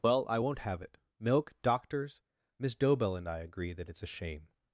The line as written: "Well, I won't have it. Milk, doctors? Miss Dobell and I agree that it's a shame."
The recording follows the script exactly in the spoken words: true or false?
true